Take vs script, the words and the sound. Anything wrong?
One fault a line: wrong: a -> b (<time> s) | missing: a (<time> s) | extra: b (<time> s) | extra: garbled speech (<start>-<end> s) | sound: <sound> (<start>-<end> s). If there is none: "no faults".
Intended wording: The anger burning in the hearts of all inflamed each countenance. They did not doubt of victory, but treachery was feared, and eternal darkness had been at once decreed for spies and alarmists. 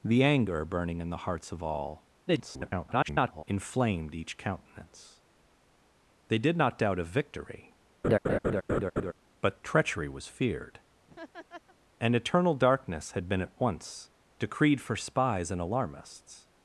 extra: garbled speech (2.3-3.4 s)
sound: laugh (8.0-9.1 s)
sound: laugh (11.1-11.8 s)